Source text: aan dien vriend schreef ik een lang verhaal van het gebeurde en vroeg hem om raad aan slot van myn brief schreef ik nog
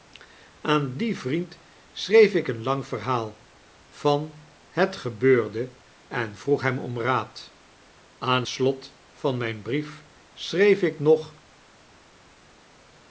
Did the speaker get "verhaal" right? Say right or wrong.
right